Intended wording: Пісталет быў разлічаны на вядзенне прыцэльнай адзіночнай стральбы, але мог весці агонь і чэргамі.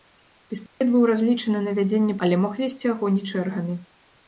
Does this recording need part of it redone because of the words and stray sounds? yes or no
yes